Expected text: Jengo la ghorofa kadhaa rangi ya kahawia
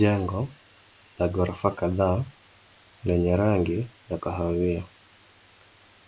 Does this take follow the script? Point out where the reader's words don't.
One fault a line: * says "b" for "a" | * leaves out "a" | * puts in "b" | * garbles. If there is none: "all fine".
* puts in "lenye"